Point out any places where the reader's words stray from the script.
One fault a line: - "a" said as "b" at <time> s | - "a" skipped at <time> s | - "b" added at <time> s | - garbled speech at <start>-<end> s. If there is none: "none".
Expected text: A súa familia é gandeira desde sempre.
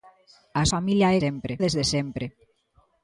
- "súa" skipped at 0.6 s
- "gandeira" said as "sempre" at 1.2 s